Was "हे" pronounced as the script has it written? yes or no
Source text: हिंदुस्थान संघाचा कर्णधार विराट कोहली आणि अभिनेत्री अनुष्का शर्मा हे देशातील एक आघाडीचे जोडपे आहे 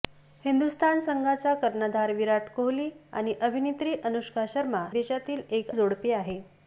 no